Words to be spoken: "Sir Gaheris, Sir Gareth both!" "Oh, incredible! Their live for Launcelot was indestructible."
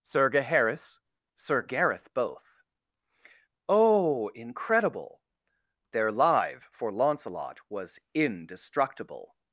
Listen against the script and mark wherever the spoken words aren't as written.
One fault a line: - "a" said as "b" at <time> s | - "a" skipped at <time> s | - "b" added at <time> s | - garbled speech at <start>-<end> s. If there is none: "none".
none